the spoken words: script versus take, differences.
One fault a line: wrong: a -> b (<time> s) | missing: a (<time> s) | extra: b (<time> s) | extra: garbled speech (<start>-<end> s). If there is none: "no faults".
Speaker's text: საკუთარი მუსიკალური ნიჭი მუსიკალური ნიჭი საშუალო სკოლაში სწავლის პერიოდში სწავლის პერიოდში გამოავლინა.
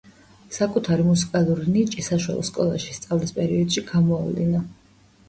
missing: მუსიკალური ნიჭი (2.0 s)
missing: სწავლის პერიოდში (3.8 s)